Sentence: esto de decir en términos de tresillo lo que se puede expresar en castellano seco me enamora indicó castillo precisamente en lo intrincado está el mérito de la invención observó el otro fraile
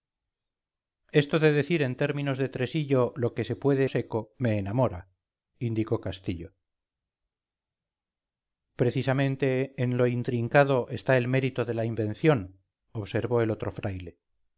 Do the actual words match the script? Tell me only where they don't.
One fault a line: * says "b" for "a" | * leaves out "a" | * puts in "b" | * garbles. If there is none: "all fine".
* leaves out "expresar en castellano"